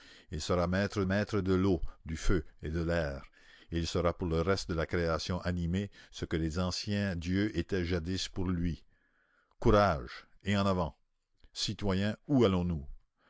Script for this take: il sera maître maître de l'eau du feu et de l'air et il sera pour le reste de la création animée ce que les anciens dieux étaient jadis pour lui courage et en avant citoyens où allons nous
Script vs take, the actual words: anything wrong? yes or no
no